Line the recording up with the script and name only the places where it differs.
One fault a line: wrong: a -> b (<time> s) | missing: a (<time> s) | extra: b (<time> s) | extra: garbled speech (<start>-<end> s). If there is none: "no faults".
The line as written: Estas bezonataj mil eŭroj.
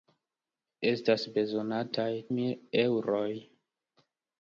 no faults